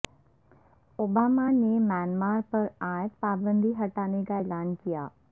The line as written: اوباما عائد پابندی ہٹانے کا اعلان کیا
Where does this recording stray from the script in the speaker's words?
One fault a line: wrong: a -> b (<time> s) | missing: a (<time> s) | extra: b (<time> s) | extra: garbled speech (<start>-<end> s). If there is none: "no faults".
extra: نے میانمار پر (1.5 s)